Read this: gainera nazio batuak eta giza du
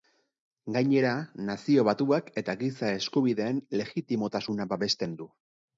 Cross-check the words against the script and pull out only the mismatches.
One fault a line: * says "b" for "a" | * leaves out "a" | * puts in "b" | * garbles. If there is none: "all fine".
* puts in "eskubideen legitimotasuna babesten"